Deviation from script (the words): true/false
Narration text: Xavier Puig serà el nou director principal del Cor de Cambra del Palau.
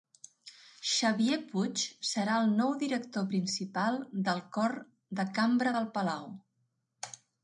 false